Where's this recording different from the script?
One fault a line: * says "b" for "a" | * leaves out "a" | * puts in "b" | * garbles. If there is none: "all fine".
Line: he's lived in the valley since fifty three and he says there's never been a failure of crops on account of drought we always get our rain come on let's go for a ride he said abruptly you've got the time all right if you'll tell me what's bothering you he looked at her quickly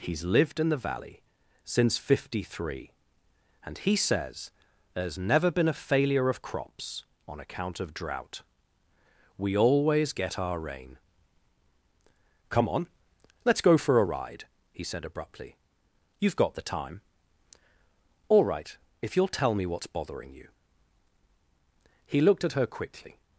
all fine